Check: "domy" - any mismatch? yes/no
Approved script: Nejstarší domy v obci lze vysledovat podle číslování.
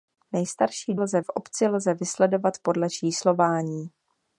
yes